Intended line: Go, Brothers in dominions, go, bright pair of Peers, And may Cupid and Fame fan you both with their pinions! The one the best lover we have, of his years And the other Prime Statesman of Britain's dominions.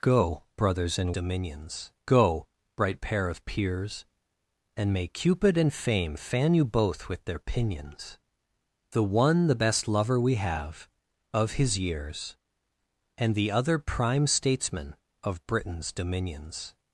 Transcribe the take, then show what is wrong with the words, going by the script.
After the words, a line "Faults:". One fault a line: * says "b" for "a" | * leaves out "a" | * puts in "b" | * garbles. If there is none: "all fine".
Go, Brothers in dominions, go, bright pair of Peers, And may Cupid and Fame fan you both with their pinions! The one the best lover we have, of his years And the other Prime Statesman of Britain's dominions.
Faults:
all fine